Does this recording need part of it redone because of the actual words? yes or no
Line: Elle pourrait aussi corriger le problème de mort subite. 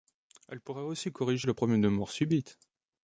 no